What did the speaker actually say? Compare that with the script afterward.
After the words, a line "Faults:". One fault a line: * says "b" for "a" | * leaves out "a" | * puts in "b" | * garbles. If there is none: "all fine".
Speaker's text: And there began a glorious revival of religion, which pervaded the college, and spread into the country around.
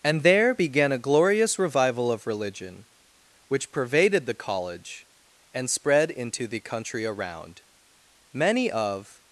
And there began a glorious revival of religion, which pervaded the college, and spread into the country around. Many of
Faults:
* puts in "Many of"